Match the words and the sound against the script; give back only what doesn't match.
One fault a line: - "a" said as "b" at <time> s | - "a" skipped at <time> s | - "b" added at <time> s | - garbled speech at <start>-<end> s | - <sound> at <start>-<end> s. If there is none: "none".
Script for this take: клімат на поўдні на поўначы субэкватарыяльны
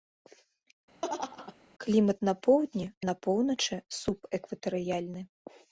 - laugh at 1.0-1.6 s